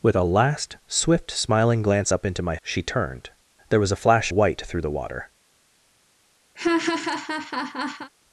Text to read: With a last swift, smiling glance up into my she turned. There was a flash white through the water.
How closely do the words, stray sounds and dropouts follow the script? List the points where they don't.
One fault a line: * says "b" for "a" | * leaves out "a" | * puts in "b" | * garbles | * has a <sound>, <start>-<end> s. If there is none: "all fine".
* has a laugh, 6.5-8.1 s